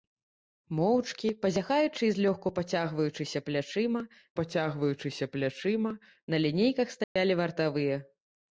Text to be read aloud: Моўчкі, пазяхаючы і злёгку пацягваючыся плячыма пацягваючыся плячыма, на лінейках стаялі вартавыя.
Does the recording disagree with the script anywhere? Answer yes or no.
no